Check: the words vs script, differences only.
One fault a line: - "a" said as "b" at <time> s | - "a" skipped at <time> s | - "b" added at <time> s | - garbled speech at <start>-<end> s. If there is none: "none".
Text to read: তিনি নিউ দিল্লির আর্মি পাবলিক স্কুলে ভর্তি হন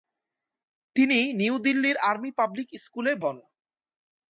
- "ভর্তি" skipped at 3.1 s